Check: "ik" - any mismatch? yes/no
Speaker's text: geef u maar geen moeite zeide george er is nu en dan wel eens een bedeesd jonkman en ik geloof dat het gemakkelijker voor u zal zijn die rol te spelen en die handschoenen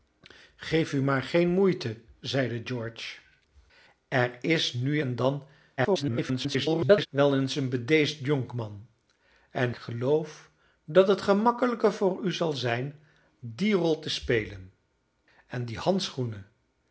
yes